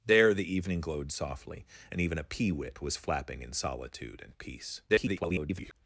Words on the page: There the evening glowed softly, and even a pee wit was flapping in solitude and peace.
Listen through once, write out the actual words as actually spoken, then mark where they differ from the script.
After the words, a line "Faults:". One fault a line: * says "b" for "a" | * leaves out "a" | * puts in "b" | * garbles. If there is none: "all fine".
There the evening glowed softly, and even a pee wit was flapping in solitude and peace. [garbled]
Faults:
* garbles